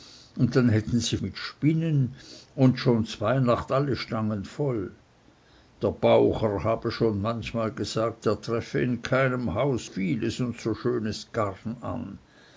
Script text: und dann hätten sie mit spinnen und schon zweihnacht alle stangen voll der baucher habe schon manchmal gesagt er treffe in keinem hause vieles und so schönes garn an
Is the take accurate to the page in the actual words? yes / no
yes